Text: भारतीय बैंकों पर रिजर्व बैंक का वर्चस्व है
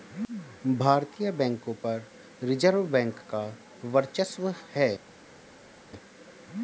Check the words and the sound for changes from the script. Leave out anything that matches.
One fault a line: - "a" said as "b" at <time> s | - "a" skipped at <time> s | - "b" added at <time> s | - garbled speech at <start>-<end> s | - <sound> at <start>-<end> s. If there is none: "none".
none